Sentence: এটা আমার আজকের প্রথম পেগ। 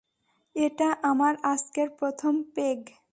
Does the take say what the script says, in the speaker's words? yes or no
yes